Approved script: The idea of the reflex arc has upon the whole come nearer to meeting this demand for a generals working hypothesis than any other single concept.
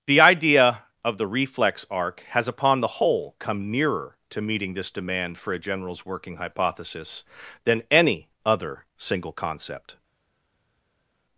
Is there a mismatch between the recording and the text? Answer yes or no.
no